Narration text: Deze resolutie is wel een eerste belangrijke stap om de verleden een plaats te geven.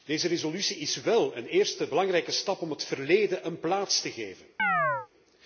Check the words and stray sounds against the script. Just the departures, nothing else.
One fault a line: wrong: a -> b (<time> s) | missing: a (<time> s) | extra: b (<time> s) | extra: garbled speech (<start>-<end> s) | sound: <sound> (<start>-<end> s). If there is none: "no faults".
wrong: de -> het (2.7 s)
sound: chirp (4.6-5.1 s)